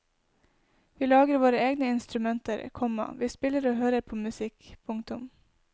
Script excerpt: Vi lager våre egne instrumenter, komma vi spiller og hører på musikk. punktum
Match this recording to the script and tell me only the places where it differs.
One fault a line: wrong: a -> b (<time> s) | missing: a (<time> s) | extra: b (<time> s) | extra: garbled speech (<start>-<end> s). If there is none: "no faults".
no faults